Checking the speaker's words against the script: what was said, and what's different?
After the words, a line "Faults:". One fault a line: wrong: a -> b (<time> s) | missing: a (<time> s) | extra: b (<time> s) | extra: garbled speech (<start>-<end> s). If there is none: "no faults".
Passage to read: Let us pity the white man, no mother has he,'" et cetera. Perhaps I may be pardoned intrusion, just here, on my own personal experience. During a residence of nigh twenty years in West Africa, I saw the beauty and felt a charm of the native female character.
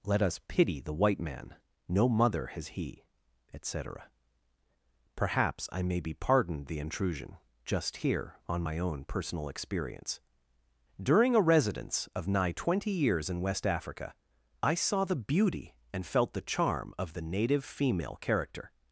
Let us pity the white man, no mother has he,'" et cetera. Perhaps I may be pardoned the intrusion, just here, on my own personal experience. During a residence of nigh twenty years in West Africa, I saw the beauty and felt the charm of the native female character.
Faults:
extra: the (6.7 s)
wrong: a -> the (16.3 s)